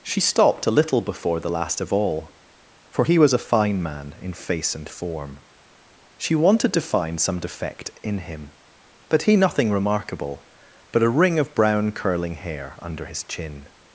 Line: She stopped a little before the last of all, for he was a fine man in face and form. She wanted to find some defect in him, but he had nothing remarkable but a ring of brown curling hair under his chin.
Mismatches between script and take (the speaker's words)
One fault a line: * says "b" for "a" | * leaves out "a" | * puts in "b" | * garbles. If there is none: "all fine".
* leaves out "had"